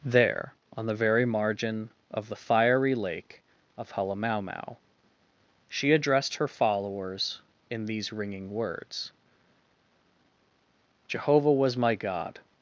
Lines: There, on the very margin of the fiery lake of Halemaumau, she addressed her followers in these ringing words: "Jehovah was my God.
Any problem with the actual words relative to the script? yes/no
no